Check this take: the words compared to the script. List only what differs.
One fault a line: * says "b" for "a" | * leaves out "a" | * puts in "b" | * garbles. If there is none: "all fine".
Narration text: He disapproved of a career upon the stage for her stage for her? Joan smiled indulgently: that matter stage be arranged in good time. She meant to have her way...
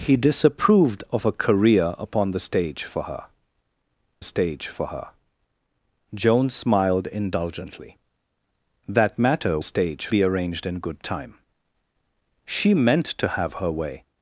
all fine